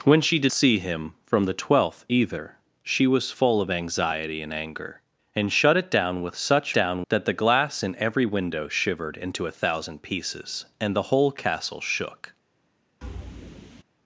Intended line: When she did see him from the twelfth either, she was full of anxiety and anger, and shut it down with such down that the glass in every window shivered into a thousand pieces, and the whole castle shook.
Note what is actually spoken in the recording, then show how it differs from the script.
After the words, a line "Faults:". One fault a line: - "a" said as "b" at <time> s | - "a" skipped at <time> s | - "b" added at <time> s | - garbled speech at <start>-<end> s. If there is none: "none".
When she did see him from the twelfth either, she was full of anxiety and anger, and shut it down with such down that the glass in every window shivered into a thousand pieces, and the whole castle shook.
Faults:
none